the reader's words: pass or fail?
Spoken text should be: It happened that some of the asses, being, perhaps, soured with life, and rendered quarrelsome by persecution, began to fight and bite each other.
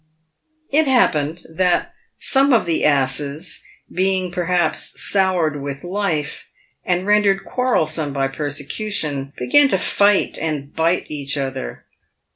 pass